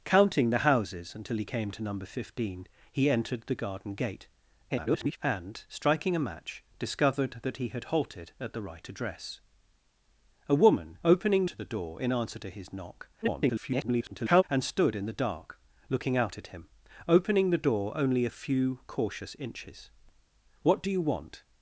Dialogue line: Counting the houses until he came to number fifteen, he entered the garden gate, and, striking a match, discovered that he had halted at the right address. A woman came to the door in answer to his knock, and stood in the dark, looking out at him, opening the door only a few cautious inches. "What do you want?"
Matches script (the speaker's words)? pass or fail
fail